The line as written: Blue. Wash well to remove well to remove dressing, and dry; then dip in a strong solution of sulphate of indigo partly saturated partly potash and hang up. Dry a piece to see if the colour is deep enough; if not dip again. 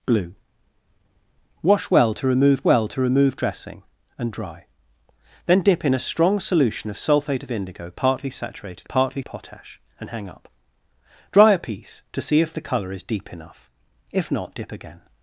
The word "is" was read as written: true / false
true